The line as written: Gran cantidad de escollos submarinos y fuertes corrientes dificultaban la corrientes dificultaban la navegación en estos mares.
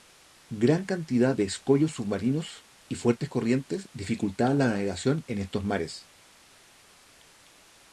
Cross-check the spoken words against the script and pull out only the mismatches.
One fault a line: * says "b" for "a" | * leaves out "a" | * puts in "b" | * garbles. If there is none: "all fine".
* leaves out "corrientes dificultaban la"